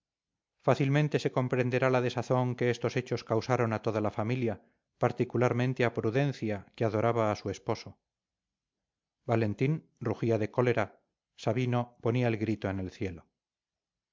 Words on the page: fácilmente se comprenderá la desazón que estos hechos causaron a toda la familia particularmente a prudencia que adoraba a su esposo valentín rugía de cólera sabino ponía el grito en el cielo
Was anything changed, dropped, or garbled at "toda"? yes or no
no